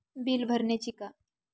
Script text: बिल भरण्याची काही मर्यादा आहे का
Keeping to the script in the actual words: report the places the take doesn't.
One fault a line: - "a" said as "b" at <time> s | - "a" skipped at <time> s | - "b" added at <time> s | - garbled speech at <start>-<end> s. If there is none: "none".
- "काही मर्यादा आहे" skipped at 0.9 s